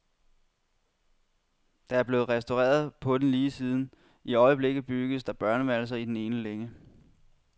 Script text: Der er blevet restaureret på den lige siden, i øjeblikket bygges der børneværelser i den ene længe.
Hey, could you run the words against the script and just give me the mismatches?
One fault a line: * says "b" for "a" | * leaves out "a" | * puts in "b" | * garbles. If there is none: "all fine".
all fine